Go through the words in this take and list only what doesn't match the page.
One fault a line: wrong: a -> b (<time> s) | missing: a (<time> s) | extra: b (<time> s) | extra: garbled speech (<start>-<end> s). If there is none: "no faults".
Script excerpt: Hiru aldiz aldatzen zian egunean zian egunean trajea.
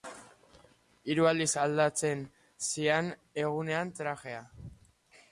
missing: zian egunean (3.9 s)